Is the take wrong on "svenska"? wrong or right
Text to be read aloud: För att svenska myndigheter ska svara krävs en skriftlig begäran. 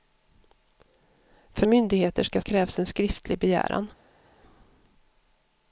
wrong